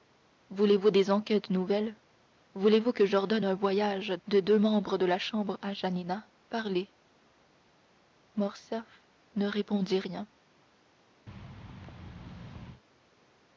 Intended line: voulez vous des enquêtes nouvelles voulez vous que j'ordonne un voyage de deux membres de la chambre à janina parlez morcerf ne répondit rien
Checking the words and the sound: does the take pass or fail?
fail